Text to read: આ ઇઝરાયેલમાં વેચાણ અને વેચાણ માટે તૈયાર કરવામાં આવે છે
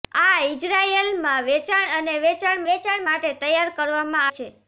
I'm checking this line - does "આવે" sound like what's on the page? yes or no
no